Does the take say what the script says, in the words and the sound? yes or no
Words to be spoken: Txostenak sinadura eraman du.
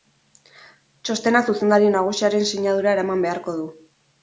no